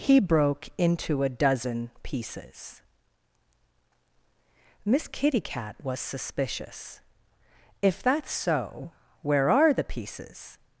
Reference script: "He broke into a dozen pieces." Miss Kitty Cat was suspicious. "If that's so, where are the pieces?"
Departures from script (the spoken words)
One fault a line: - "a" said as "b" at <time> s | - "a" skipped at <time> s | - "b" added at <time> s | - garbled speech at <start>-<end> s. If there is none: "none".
none